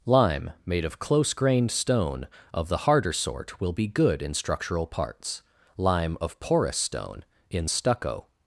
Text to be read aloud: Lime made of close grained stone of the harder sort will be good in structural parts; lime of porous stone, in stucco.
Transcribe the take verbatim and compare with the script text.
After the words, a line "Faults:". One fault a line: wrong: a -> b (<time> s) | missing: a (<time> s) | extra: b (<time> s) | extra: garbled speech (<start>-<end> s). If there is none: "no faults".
Lime made of close grained stone of the harder sort will be good in structural parts; lime of porous stone, in stucco.
Faults:
no faults